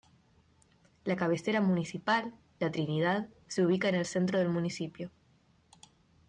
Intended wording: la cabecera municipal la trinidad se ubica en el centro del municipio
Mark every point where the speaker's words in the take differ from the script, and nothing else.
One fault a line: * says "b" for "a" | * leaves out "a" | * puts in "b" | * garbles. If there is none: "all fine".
all fine